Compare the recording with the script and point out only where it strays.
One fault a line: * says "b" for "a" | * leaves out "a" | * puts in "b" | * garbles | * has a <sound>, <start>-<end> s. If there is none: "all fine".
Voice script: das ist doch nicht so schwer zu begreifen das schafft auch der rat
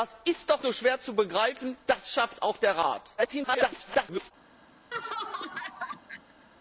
* leaves out "nicht"
* garbles
* has a laugh, 4.9-6.5 s